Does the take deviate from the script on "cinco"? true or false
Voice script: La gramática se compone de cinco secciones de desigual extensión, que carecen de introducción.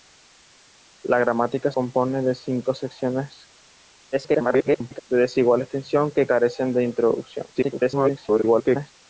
false